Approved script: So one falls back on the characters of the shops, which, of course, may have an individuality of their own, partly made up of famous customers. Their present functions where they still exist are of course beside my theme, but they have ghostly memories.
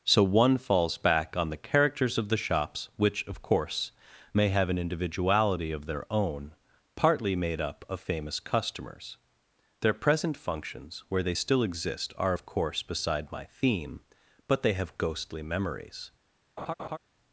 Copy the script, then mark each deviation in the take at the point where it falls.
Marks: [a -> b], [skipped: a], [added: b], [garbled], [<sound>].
So one falls back on the characters of the shops, which, of course, may have an individuality of their own, partly made up of famous customers. Their present functions where they still exist are of course beside my theme, but they have ghostly memories. [laugh]